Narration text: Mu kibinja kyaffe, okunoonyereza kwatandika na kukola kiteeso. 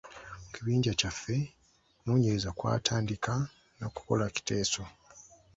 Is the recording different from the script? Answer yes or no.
no